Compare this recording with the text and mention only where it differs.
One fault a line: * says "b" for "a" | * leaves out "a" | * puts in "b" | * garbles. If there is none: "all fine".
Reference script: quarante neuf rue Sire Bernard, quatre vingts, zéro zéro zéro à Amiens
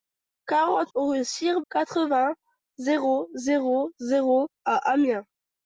* leaves out "neuf"
* leaves out "Bernard"